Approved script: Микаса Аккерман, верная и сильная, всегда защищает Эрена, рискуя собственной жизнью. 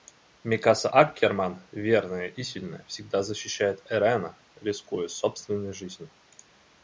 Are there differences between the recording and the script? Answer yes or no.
no